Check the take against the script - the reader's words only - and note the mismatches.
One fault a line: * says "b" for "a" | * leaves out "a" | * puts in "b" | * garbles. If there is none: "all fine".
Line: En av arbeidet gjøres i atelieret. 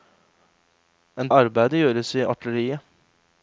all fine